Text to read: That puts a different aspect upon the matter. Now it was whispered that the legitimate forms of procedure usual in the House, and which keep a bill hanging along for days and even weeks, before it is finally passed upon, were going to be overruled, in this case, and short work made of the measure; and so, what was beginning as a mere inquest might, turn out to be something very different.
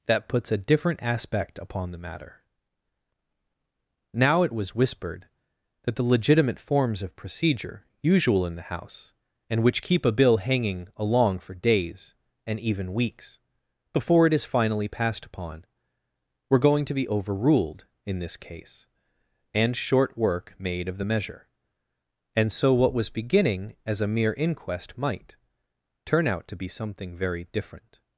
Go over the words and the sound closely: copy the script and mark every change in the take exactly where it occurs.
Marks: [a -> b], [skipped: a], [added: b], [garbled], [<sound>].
That puts a different aspect upon the matter. Now it was whispered that the legitimate forms of procedure usual in the House, and which keep a bill hanging along for days and even weeks, before it is finally passed upon, were going to be overruled, in this case, and short work made of the measure; and so, what was beginning as a mere inquest might, turn out to be something very different.